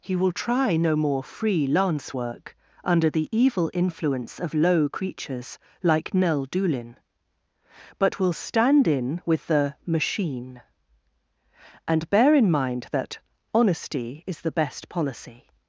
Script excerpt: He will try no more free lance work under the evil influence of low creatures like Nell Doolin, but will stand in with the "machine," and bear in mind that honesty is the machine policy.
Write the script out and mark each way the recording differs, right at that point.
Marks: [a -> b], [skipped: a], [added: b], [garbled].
He will try no more free lance work under the evil influence of low creatures like Nell Doolin, but will stand in with the "machine," and bear in mind that honesty is the [machine -> best] policy.